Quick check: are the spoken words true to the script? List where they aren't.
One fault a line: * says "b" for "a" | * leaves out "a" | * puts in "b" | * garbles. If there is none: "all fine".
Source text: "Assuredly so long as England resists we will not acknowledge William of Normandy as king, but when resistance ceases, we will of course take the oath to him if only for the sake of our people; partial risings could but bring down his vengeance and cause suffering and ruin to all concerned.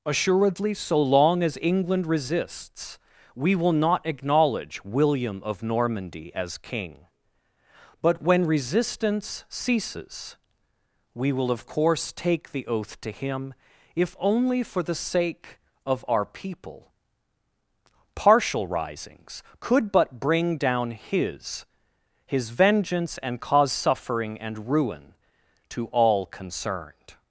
* puts in "his"